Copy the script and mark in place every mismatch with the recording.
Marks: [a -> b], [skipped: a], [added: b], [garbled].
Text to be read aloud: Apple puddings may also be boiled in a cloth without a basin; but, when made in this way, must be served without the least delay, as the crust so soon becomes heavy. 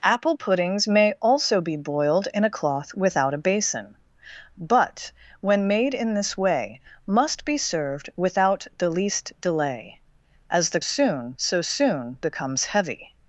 Apple puddings may also be boiled in a cloth without a basin; but, when made in this way, must be served without the least delay, as the [crust -> soon] so soon becomes heavy.